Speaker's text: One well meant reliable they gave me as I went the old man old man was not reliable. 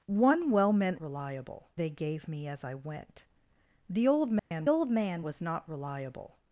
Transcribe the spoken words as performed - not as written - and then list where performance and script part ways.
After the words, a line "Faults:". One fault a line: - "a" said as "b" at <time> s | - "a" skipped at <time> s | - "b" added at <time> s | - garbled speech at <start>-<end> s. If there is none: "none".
One well meant reliable they gave me as I went the old man old man was not reliable.
Faults:
none